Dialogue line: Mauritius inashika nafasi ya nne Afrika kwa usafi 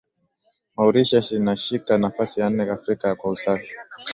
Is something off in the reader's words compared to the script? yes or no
no